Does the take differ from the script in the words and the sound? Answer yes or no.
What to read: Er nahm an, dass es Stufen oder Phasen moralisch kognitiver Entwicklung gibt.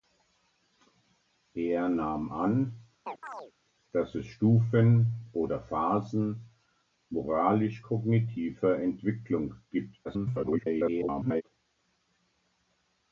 yes